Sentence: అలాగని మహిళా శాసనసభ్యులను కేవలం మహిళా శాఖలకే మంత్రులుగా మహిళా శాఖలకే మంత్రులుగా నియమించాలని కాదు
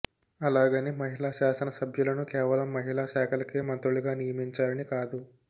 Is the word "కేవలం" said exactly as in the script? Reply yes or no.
yes